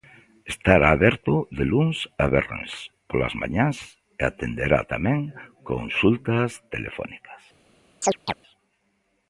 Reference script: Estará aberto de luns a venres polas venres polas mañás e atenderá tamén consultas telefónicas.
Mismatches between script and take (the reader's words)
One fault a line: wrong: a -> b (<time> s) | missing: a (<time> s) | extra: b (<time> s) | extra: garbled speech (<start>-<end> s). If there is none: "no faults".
missing: venres polas (3.3 s)